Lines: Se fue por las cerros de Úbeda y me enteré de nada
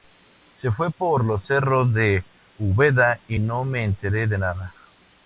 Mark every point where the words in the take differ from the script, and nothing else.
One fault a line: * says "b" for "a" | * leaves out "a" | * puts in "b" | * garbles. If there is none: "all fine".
* says "los" for "las"
* puts in "no"